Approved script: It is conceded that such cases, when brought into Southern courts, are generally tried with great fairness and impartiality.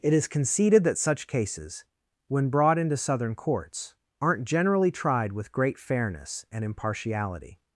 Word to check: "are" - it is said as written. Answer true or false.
false